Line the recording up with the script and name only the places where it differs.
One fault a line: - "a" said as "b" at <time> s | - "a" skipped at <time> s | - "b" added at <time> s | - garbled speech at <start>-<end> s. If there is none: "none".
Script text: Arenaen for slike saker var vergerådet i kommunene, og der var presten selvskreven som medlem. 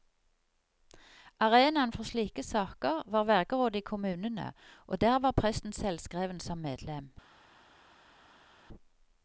none